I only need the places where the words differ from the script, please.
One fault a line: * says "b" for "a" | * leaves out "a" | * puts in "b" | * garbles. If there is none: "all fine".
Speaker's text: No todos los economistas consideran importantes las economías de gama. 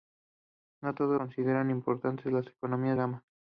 * leaves out "los economistas"
* leaves out "de"